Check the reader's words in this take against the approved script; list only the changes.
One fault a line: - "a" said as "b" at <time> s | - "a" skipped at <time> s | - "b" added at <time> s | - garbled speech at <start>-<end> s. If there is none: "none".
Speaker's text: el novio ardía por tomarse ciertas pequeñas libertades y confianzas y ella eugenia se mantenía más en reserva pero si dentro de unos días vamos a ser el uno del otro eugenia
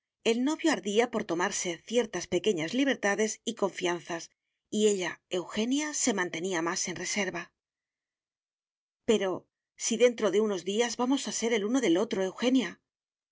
none